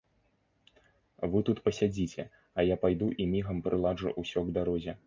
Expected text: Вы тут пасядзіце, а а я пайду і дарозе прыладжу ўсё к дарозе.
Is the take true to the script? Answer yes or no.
no